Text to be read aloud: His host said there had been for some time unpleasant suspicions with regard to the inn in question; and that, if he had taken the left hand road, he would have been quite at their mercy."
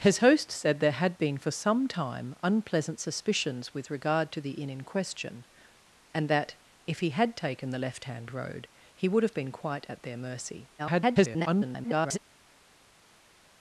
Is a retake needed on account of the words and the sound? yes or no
yes